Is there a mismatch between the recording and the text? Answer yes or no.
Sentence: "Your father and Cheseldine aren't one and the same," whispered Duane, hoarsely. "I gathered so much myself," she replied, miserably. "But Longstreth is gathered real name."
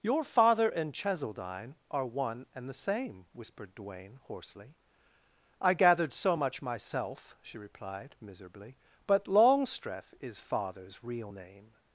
yes